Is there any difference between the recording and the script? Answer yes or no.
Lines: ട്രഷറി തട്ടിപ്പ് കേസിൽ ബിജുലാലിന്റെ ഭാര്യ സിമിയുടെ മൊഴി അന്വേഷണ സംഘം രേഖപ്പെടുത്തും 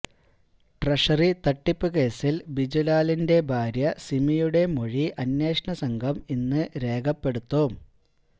yes